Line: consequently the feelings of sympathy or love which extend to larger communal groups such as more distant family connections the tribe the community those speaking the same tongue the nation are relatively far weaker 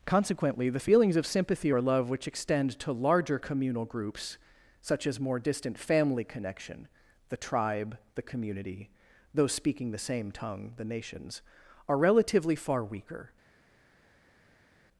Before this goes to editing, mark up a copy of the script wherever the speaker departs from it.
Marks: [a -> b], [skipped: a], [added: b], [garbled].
consequently the feelings of sympathy or love which extend to larger communal groups such as more distant family [connections -> connection] the tribe the community those speaking the same tongue the [nation -> nations] are relatively far weaker